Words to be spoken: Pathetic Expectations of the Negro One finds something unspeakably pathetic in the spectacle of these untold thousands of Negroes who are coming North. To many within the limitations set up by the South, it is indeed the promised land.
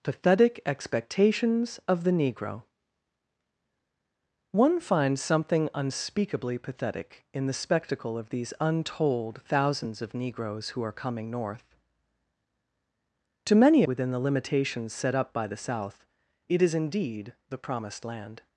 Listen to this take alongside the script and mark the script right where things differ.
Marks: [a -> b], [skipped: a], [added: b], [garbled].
Pathetic Expectations of the Negro One finds something unspeakably pathetic in the spectacle of these untold thousands of Negroes who are coming North. To many within the limitations set up by the South, it is indeed the promised land.